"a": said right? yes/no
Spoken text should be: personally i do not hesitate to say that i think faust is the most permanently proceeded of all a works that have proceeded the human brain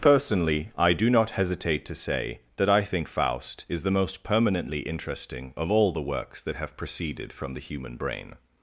no